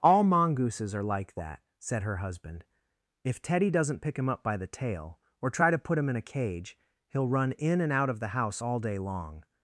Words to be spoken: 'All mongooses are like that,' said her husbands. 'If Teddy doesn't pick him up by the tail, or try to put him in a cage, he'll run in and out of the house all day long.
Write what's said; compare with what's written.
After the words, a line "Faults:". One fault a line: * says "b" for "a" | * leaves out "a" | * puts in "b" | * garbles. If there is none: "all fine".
'All mongooses are like that,' said her husband. 'If Teddy doesn't pick him up by the tail, or try to put him in a cage, he'll run in and out of the house all day long.
Faults:
* says "husband" for "husbands"